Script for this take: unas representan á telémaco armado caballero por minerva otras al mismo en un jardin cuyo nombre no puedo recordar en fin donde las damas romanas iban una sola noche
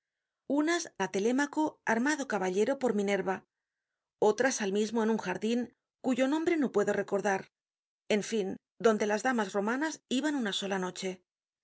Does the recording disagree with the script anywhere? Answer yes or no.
yes